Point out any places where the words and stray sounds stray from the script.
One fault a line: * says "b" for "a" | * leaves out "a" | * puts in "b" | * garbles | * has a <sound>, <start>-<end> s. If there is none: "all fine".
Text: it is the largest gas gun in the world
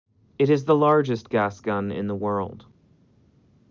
all fine